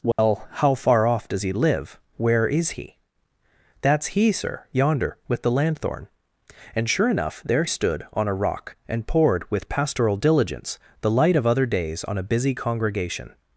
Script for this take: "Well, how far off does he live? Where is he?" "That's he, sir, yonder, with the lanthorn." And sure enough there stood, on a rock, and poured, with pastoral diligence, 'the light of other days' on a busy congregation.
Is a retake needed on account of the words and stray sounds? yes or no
yes